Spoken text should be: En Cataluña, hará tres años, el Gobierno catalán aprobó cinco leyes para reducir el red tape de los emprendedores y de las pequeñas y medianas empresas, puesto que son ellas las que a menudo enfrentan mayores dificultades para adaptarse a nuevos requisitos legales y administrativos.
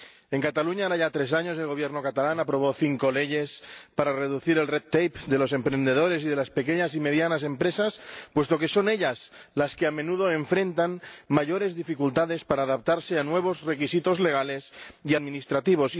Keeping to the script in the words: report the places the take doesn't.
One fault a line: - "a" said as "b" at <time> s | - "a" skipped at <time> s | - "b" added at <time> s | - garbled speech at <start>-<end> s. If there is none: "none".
- "ya" added at 0.9 s